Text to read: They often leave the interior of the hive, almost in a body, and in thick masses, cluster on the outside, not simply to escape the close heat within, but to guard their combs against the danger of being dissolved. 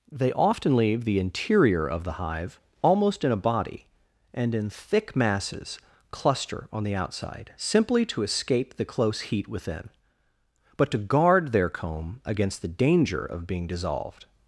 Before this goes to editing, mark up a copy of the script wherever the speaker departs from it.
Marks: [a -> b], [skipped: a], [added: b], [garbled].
They often leave the interior of the hive, almost in a body, and in thick masses, cluster on the outside, [skipped: not] simply to escape the close heat within, but to guard their [combs -> comb] against the danger of being dissolved.